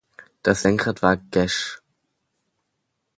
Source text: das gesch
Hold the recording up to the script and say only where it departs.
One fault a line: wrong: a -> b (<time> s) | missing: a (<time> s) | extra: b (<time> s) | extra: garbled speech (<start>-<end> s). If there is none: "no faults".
extra: lenkrad war (0.6 s)